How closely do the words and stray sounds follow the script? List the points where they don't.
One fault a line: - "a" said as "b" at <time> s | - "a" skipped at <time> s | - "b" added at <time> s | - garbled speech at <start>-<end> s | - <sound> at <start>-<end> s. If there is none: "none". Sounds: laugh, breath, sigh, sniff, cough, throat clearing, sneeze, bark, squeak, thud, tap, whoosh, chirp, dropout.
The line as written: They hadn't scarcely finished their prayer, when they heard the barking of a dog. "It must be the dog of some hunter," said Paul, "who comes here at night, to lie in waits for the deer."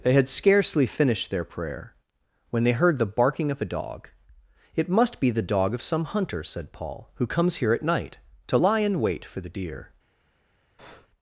- "hadn't" said as "had" at 0.1 s
- "waits" said as "wait" at 9.0 s
- breath at 10.8-11.1 s